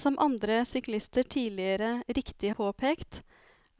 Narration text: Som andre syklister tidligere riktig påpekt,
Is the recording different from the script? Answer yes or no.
no